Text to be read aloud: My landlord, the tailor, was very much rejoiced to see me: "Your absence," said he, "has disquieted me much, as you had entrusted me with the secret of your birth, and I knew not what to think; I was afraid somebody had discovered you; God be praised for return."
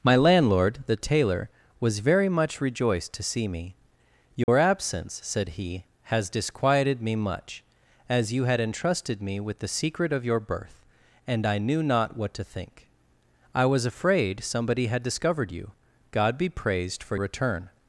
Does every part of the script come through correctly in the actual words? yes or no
yes